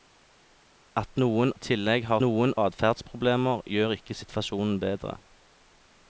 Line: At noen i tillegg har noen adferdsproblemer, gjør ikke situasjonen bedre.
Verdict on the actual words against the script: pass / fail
pass